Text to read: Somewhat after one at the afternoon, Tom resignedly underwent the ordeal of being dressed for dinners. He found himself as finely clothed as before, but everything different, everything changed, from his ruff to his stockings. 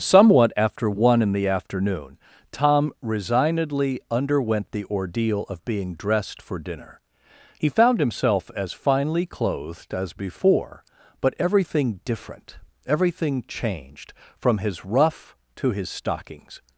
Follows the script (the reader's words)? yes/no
no